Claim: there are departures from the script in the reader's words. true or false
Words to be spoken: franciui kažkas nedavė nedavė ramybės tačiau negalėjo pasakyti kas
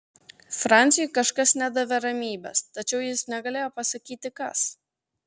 true